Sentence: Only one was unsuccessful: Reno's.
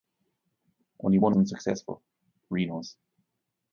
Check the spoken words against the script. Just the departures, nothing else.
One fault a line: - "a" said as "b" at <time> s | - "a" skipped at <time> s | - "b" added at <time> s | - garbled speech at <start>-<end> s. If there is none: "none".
- "was" skipped at 1.4 s